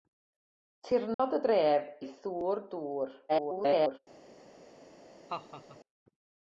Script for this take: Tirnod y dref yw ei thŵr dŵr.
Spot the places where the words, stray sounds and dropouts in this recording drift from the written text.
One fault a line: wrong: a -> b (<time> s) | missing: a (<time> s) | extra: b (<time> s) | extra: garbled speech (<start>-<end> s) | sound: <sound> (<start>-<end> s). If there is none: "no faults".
sound: dropout (1.1-1.2 s)
missing: yw (1.9 s)
extra: garbled speech (3.3-4.0 s)
sound: laugh (5.3-5.8 s)